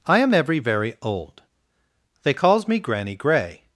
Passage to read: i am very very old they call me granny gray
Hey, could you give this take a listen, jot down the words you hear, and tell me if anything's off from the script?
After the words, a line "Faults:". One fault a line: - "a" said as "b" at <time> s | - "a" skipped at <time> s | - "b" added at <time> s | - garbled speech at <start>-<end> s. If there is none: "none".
i am every very old they calls me granny gray
Faults:
- "very" said as "every" at 0.3 s
- "call" said as "calls" at 2.3 s